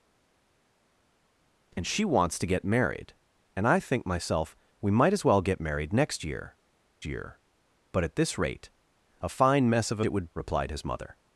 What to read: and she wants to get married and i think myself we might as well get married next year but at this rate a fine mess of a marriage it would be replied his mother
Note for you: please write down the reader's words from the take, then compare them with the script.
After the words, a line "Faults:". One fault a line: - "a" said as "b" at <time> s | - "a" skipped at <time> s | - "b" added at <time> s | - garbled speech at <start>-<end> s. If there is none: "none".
and she wants to get married and i think myself we might as well get married next year year but at this rate a fine mess of a it would replied his mother
Faults:
- "year" added at 7.0 s
- "marriage" skipped at 10.0 s
- "be" skipped at 10.3 s